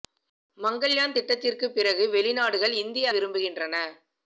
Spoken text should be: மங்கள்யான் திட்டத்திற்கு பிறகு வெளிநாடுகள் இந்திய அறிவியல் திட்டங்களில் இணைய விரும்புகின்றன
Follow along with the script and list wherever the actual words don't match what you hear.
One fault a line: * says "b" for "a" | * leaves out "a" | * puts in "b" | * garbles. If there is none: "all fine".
* leaves out "அறிவியல் திட்டங்களில் இணைய"